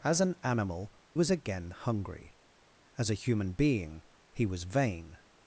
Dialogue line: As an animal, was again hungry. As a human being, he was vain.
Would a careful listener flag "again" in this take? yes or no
no